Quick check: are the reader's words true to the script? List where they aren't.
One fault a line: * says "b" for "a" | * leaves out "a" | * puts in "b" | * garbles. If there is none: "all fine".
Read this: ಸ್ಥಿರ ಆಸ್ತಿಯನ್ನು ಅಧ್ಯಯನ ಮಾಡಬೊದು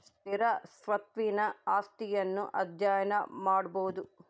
* puts in "ಸ್ವತ್ತಿನ"